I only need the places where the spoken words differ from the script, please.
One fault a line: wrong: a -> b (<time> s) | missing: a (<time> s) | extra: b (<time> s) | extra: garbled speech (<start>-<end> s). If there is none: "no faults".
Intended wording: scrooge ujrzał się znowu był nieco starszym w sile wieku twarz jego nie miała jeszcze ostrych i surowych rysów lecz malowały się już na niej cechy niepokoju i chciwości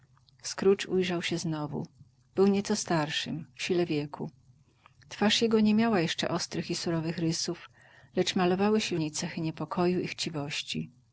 missing: już na (8.9 s)